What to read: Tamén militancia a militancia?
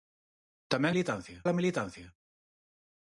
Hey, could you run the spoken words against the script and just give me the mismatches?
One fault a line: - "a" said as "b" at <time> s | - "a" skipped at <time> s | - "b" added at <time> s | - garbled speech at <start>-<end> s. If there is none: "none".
none